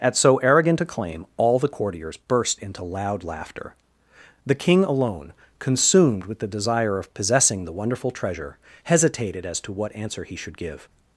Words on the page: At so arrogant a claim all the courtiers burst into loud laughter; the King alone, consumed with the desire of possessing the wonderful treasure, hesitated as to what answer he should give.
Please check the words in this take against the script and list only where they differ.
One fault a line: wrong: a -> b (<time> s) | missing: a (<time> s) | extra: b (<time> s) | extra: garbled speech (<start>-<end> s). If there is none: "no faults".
no faults